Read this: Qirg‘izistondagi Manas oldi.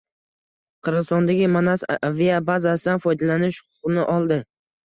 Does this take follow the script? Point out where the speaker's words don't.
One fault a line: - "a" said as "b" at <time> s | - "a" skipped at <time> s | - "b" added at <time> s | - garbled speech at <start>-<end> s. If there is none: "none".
- "aviabazasidan foydalanish huquqini" added at 2.1 s